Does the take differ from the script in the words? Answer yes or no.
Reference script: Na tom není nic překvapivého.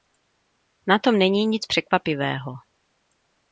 no